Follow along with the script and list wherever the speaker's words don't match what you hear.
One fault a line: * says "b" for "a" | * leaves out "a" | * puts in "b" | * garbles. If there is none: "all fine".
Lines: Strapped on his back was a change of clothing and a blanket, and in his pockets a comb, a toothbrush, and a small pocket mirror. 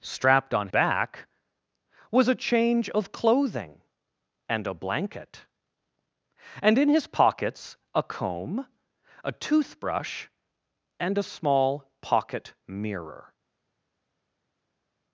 * leaves out "his"